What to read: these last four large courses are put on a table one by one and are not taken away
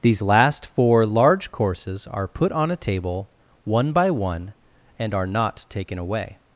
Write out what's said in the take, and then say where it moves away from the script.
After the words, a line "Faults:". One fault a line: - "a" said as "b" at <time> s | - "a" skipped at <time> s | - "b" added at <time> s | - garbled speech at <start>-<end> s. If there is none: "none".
these last four large courses are put on a table one by one and are not taken away
Faults:
none